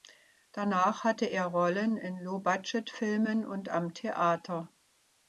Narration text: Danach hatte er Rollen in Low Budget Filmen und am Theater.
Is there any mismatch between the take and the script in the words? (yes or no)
no